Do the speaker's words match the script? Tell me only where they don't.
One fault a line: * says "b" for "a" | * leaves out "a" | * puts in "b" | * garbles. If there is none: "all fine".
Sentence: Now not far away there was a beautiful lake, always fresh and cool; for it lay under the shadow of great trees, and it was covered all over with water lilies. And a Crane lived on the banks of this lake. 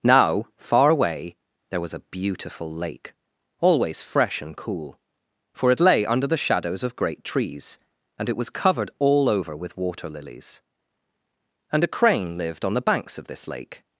* leaves out "not"
* says "shadows" for "shadow"